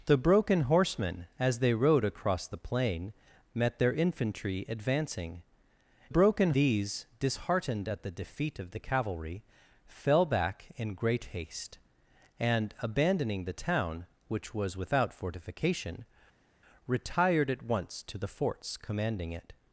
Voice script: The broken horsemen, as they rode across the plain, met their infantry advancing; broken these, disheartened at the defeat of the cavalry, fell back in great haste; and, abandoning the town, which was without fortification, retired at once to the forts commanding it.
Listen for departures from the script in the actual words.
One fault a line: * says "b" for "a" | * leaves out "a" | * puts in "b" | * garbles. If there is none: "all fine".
all fine